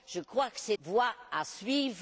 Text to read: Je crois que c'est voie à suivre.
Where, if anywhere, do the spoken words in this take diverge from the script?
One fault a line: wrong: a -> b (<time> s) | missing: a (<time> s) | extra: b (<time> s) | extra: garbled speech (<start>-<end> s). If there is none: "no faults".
no faults